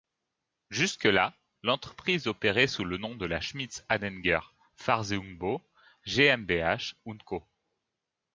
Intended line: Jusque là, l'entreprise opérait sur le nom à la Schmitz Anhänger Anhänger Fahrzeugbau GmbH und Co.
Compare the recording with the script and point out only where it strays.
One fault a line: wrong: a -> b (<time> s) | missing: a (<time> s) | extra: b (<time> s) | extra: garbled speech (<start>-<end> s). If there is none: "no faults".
wrong: sur -> sous (2.6 s)
wrong: à -> de (3.1 s)
missing: Anhänger (4.4 s)